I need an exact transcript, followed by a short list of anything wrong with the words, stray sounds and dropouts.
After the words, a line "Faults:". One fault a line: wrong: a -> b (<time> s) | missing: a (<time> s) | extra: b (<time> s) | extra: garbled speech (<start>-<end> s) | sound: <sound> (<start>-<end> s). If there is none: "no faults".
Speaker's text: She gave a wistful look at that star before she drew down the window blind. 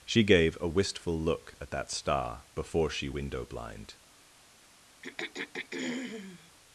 She gave a wistful look at that star before she window blind.
Faults:
missing: drew down the (3.1 s)
sound: throat clearing (5.0-6.5 s)